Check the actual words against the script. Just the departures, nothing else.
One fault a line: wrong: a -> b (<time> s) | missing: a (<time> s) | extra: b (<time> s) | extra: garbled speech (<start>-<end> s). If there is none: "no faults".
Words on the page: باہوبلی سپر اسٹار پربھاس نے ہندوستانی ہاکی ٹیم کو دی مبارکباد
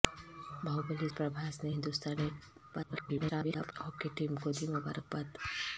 missing: سپر اسٹار (1.1 s)
extra: garbled speech (2.7-3.7 s)